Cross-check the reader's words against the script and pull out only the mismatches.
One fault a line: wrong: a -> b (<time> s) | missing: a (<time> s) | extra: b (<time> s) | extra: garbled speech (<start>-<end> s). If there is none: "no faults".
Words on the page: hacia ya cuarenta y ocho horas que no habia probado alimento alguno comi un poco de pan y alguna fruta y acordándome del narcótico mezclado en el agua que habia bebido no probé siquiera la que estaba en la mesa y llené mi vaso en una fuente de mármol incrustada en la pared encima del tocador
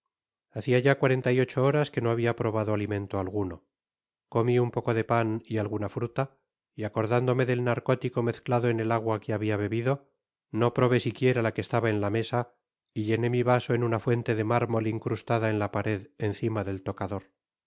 no faults